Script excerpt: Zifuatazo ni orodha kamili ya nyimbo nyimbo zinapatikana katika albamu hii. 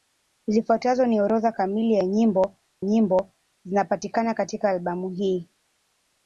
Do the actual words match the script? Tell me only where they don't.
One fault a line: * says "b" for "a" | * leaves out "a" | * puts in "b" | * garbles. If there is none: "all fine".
all fine